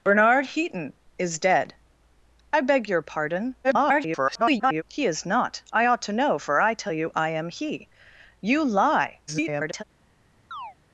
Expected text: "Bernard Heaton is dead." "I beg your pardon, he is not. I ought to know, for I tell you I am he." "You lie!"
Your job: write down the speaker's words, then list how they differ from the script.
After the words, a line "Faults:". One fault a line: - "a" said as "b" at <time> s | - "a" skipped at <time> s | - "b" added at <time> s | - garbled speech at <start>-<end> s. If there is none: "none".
"Bernard Heaton is dead." "I beg your pardon, [garbled] he is not. I ought to know, for I tell you I am he." "You lie!" [garbled]
Faults:
- garbled speech at 3.6-4.8 s
- garbled speech at 9.3-9.8 s